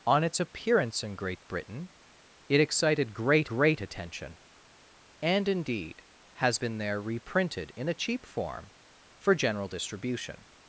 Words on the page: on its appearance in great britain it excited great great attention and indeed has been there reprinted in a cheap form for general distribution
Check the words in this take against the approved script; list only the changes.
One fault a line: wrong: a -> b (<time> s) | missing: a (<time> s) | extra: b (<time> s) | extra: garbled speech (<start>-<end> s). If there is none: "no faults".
no faults